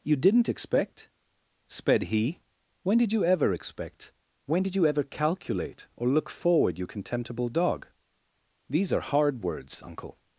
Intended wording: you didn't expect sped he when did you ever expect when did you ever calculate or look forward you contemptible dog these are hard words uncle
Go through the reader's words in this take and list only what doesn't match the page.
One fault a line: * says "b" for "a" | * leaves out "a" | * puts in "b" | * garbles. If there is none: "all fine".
all fine